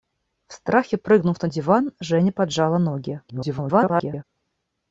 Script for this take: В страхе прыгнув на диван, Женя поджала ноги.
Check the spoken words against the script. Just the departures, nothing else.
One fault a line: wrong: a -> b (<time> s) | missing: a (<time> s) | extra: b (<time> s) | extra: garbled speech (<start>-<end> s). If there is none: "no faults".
extra: garbled speech (3.3-4.2 s)